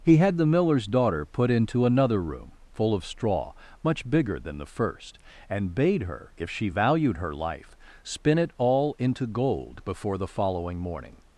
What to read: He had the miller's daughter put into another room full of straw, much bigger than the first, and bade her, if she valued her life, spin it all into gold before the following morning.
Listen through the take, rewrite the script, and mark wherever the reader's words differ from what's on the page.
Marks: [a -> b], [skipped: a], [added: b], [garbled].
He had the miller's daughter put into another room full of straw, much bigger than the first, and bade her, if she valued her life, spin it all into gold before the following morning.